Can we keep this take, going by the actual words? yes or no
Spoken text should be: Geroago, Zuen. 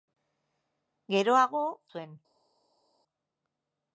yes